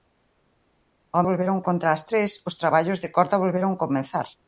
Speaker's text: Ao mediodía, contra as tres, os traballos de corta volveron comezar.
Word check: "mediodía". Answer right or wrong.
wrong